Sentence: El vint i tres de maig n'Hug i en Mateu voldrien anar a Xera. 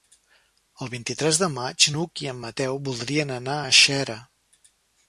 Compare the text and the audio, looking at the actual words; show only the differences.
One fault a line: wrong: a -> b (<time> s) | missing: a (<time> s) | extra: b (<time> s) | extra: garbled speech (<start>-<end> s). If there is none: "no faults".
no faults